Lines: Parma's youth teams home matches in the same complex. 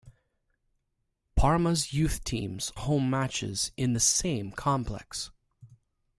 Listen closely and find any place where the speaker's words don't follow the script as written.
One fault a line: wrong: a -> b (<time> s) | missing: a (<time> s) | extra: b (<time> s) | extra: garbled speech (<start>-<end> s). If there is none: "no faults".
no faults